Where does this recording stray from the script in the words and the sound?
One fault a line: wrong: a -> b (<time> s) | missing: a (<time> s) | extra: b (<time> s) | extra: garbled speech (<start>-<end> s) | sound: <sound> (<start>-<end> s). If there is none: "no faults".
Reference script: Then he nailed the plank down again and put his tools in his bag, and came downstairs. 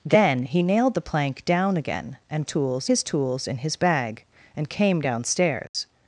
wrong: put -> tools (2.4 s)
sound: dropout (5.7-5.7 s)